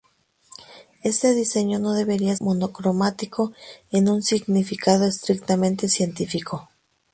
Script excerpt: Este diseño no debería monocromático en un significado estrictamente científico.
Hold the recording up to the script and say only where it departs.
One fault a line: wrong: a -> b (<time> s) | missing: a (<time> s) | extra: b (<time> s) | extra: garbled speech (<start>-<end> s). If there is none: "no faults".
no faults